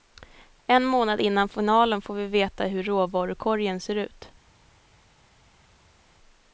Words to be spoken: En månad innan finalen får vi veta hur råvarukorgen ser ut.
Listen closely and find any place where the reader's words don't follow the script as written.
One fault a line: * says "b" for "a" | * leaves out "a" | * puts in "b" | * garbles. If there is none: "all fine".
all fine